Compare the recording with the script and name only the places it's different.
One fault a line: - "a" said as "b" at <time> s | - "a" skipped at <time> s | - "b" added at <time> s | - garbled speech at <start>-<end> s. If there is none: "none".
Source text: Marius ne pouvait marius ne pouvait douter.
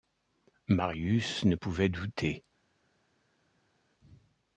- "marius ne pouvait" skipped at 1.9 s